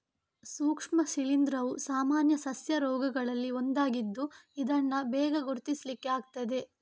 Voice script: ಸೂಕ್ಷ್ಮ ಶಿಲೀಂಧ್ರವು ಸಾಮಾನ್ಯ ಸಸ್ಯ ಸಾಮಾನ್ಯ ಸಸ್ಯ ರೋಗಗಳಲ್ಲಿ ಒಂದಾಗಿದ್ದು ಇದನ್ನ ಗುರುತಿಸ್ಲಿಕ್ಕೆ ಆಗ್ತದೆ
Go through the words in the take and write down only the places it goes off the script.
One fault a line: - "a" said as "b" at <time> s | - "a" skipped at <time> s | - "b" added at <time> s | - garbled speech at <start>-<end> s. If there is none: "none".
- "ಸಾಮಾನ್ಯ ಸಸ್ಯ" skipped at 2.8 s
- "ಬೇಗ" added at 5.1 s